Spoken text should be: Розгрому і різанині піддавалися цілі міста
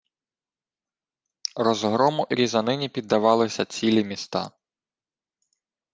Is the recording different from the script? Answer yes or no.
no